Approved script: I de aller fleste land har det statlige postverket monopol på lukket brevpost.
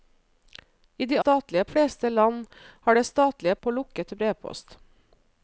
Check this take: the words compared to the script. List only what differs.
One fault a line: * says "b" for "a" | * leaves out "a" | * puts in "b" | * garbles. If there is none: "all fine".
* says "statlige" for "aller"
* leaves out "postverket monopol"